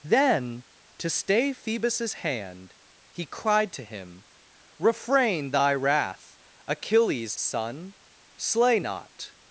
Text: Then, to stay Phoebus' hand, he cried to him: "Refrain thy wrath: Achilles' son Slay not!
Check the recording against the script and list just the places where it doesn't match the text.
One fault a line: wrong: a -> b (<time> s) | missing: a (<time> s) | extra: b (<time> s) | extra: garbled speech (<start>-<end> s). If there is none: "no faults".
no faults